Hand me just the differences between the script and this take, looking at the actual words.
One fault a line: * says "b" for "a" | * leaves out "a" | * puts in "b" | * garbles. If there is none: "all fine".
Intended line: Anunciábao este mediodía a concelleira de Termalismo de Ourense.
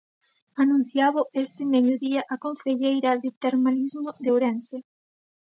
all fine